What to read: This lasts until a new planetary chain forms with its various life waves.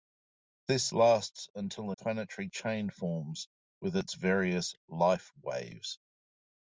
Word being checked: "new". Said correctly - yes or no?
no